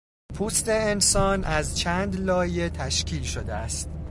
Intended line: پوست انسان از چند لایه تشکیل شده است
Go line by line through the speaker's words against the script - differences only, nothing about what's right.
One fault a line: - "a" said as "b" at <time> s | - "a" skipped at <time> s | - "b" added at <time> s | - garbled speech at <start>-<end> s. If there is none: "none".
none